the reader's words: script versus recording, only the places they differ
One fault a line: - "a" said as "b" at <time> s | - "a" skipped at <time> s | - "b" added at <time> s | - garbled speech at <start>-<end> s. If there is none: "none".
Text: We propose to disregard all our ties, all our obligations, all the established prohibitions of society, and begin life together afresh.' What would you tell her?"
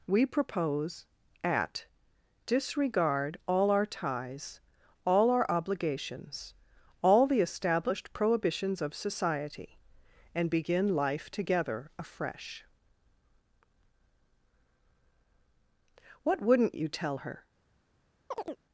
- "to" said as "at" at 1.4 s
- "would" said as "wouldn't" at 16.4 s